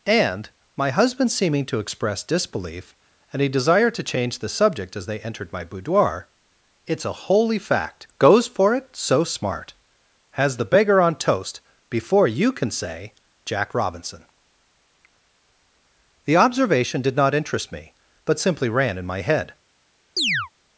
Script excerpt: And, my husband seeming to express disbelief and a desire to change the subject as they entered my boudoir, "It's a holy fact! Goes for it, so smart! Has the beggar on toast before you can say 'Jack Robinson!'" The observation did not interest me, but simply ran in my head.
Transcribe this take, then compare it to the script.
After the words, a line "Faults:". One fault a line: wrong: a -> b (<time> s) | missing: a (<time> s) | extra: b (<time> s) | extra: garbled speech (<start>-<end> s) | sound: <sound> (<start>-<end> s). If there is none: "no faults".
And, my husband seeming to express disbelief and a desire to change the subject as they entered my boudoir, "It's a holy fact! Goes for it, so smart! Has the beggar on toast before you can say 'Jack Robinson!'" The observation did not interest me, but simply ran in my head.
Faults:
sound: chirp (20.2-20.5 s)